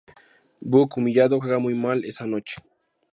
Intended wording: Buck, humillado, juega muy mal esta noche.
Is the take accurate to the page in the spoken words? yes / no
no